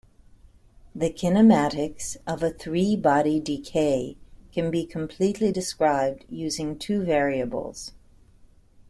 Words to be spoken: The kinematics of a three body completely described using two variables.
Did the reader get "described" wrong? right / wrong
right